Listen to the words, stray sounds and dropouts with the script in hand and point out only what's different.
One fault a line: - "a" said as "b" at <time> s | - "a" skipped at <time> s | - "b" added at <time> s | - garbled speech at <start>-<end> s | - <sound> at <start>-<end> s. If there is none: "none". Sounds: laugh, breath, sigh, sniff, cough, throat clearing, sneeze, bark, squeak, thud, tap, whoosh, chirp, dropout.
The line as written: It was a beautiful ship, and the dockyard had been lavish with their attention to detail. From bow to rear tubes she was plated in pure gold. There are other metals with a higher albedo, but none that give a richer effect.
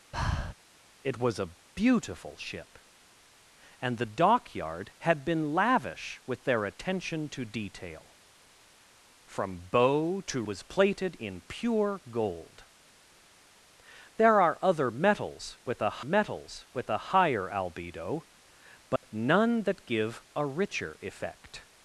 - breath at 0.1-0.5 s
- "rear tubes she" skipped at 10.4 s
- "metals with a" added at 16.0 s
- dropout at 19.0-19.0 s